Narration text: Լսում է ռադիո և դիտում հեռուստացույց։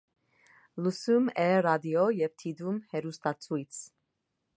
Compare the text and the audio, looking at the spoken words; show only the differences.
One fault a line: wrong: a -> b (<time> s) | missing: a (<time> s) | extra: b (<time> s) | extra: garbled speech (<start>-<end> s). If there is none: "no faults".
no faults